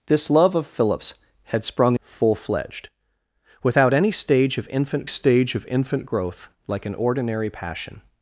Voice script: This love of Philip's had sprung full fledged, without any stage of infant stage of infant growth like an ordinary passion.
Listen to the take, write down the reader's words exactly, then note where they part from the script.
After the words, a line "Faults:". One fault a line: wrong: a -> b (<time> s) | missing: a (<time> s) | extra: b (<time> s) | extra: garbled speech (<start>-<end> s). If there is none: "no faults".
This love of Philip's had sprung full fledged, without any stage of infant stage of infant growth like an ordinary passion.
Faults:
no faults